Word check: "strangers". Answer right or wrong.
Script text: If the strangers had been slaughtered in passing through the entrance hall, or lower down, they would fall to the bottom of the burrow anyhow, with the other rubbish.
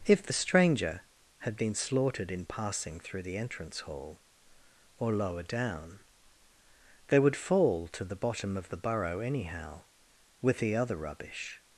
wrong